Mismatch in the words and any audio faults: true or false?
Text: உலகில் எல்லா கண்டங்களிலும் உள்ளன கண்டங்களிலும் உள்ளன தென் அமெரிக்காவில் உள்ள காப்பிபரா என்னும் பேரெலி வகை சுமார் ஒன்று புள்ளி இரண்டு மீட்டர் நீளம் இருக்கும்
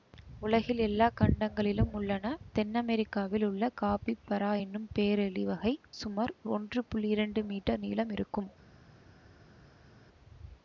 true